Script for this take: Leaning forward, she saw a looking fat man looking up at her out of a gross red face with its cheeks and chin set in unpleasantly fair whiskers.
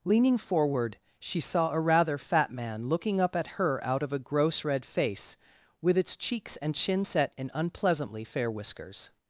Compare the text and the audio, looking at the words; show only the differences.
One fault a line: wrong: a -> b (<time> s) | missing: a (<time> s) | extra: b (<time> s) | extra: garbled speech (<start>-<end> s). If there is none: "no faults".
wrong: looking -> rather (1.8 s)